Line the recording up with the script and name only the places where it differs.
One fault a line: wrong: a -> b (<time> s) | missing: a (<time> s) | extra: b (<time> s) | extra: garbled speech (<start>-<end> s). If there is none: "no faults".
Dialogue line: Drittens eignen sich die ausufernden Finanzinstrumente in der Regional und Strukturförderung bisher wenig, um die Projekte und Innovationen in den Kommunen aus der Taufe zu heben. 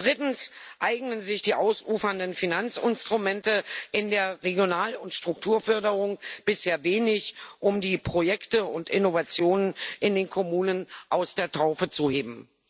no faults